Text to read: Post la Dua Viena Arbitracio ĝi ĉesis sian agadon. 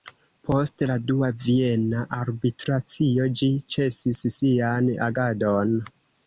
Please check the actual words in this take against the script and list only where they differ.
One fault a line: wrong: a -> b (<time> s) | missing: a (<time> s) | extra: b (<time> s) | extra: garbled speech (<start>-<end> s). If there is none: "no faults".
no faults